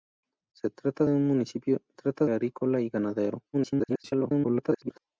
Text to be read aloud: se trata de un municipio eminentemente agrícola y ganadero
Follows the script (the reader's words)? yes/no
no